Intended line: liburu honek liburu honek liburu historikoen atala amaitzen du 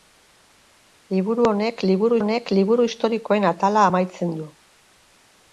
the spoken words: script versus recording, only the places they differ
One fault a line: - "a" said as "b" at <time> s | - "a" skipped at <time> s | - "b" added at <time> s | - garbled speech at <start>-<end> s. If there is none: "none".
none